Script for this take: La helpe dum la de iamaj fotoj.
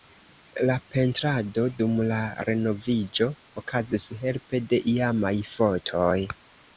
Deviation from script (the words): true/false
true